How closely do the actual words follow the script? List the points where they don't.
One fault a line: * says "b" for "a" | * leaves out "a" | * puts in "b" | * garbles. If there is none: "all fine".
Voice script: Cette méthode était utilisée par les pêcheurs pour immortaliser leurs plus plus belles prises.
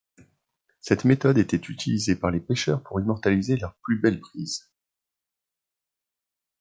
* leaves out "plus"